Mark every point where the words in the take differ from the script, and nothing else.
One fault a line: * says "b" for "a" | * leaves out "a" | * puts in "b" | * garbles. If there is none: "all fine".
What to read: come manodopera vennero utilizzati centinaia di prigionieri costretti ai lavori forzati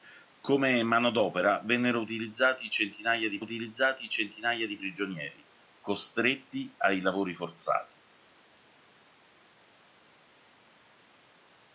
* puts in "utilizzati centinaia di"